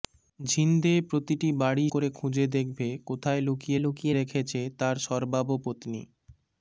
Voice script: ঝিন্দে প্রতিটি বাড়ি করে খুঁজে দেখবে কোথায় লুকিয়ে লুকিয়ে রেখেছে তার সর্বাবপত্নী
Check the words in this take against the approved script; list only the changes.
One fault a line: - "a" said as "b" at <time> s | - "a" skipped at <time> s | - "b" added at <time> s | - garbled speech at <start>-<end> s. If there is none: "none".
none